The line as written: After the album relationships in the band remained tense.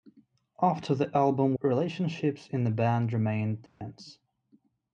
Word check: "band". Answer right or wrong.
right